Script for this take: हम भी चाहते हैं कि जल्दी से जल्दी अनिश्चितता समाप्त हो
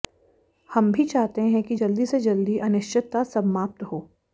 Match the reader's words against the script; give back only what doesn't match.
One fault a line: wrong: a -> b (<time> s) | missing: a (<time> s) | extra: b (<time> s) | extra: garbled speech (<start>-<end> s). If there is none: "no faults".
no faults